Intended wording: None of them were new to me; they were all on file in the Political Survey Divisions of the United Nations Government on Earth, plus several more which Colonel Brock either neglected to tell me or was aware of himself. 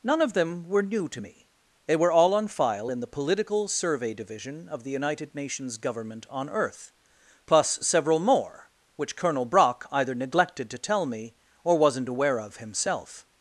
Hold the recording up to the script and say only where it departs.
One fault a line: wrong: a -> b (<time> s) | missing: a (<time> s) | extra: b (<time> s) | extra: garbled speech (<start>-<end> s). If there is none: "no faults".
wrong: Divisions -> Division (4.1 s)
wrong: was -> wasn't (11.8 s)